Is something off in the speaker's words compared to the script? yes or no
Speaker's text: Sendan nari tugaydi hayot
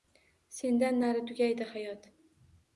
no